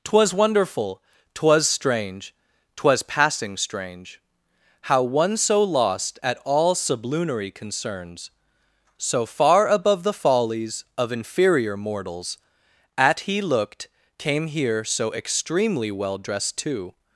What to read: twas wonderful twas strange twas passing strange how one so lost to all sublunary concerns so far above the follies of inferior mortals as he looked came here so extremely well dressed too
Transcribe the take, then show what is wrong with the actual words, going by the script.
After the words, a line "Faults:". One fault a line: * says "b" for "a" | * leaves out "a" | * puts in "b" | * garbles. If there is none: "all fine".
twas wonderful twas strange twas passing strange how one so lost at all sublunary concerns so far above the follies of inferior mortals at he looked came here so extremely well dressed too
Faults:
* says "at" for "to"
* says "at" for "as"